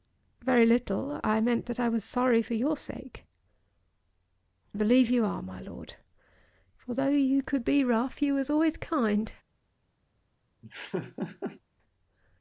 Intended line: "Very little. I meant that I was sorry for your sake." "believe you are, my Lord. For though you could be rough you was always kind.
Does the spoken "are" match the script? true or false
true